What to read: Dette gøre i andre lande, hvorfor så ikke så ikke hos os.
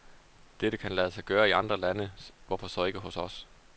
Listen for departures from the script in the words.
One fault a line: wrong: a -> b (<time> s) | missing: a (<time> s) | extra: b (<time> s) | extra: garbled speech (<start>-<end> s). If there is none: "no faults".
extra: kan lade sig (0.8 s)
missing: så ikke (3.0 s)